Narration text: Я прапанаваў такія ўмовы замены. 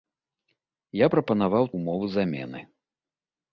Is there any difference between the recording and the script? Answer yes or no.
yes